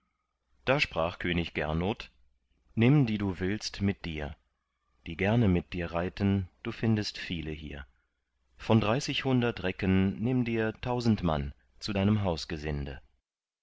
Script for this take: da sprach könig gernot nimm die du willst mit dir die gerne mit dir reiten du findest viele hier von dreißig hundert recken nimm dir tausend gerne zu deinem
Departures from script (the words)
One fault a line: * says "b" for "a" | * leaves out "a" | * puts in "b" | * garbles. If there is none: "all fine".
* says "mann" for "gerne"